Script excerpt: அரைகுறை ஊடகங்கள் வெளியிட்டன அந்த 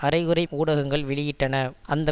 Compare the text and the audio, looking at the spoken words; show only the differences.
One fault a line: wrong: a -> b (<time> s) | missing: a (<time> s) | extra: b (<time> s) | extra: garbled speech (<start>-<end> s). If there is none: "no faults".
no faults